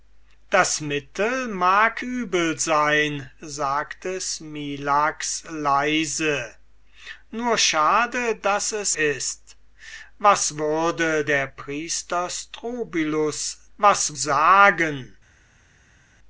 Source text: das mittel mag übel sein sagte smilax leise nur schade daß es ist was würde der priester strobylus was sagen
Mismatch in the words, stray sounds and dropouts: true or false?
false